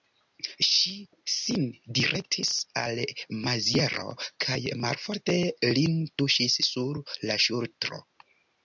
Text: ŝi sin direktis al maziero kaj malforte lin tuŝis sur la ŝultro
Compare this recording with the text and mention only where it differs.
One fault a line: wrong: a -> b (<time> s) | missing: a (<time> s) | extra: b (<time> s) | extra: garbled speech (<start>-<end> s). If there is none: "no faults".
no faults